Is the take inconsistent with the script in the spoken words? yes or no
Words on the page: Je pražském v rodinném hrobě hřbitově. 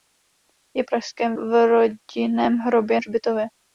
no